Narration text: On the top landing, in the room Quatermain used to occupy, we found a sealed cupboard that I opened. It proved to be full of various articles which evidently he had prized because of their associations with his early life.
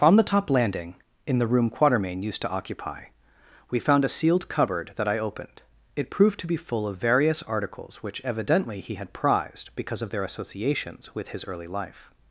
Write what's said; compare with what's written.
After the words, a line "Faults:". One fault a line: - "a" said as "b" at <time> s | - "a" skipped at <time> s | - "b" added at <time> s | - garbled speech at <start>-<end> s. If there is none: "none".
On the top landing, in the room Quatermain used to occupy, we found a sealed cupboard that I opened. It proved to be full of various articles which evidently he had prized because of their associations with his early life.
Faults:
none